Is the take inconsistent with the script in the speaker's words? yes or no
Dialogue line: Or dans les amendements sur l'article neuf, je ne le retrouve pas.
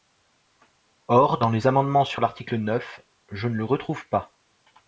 no